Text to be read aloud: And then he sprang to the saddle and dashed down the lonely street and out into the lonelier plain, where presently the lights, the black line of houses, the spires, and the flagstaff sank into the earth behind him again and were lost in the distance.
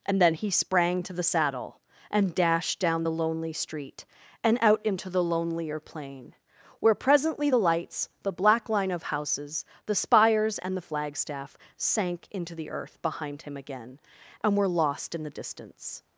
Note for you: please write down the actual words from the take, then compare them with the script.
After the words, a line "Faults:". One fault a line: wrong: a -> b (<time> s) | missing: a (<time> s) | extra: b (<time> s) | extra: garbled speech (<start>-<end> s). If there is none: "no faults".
And then he sprang to the saddle and dashed down the lonely street and out into the lonelier plain, where presently the lights, the black line of houses, the spires, and the flagstaff sank into the earth behind him again and were lost in the distance.
Faults:
no faults